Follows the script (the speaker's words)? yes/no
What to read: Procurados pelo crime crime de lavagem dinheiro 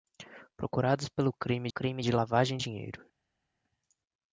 yes